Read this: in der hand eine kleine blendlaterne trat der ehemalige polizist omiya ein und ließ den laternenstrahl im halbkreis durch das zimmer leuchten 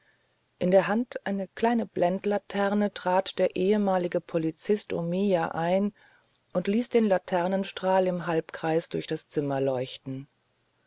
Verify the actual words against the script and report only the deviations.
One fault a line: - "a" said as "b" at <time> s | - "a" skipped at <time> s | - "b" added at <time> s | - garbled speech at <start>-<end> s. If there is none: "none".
none